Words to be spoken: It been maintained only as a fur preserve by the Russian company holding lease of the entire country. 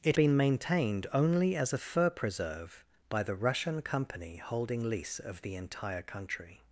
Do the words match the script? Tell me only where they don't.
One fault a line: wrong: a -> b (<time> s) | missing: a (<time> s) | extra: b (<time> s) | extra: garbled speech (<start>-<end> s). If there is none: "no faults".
no faults